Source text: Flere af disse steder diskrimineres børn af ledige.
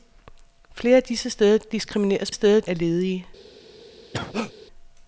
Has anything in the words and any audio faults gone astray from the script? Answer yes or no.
yes